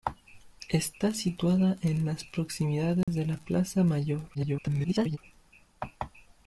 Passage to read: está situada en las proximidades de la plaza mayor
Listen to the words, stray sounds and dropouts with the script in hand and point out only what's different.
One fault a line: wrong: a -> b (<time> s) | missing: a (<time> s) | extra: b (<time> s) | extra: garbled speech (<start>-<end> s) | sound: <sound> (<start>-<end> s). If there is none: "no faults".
sound: dropout (3.0-3.1 s)
extra: garbled speech (4.3-5.2 s)